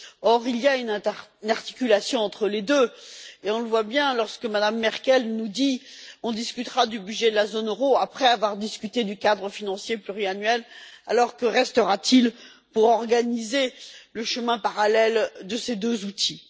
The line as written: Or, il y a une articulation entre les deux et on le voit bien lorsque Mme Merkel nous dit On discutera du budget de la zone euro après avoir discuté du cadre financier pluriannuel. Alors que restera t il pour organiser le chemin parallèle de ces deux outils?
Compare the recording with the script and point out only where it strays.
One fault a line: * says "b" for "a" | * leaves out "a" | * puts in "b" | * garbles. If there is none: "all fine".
all fine